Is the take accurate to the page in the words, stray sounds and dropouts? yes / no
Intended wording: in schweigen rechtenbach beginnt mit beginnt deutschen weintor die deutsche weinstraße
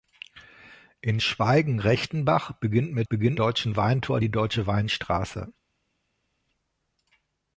yes